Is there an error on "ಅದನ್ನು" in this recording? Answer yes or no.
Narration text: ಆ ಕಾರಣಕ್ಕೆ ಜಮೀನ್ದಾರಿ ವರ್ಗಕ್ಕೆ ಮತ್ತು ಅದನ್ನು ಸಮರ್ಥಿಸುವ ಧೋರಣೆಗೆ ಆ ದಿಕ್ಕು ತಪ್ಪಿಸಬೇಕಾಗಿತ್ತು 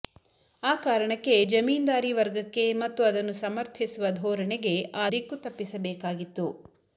no